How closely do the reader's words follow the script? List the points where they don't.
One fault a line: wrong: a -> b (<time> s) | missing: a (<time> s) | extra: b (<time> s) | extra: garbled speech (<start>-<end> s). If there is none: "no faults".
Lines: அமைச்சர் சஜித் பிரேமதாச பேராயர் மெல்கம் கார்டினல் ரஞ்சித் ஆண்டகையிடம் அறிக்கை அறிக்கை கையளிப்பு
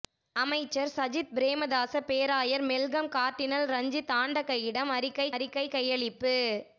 no faults